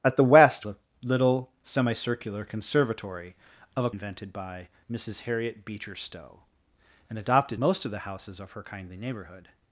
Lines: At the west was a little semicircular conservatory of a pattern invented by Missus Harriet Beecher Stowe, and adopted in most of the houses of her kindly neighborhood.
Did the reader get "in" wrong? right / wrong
wrong